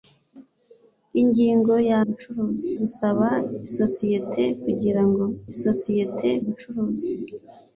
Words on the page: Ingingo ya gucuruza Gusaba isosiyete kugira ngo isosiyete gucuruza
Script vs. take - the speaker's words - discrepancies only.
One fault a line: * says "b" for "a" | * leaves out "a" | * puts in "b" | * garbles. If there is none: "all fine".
all fine